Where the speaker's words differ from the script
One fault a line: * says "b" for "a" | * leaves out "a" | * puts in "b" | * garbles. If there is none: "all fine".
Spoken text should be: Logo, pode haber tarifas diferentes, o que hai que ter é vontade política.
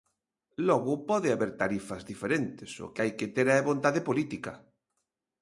all fine